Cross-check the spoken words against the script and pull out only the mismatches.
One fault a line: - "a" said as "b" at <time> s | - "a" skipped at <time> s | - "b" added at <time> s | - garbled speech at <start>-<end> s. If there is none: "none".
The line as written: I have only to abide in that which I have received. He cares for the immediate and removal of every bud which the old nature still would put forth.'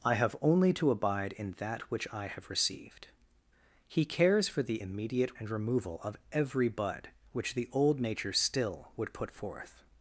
none